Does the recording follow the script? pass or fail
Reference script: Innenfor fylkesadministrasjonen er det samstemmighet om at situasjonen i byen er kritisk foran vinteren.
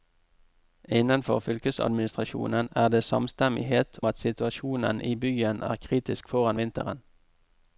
fail